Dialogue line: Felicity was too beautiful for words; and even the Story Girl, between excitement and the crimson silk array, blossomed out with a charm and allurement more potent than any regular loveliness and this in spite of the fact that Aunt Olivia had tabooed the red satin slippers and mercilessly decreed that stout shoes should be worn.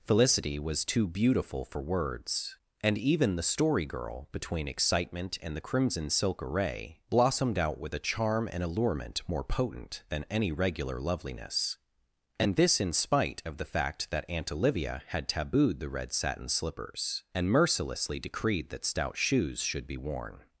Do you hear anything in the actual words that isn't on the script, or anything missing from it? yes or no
no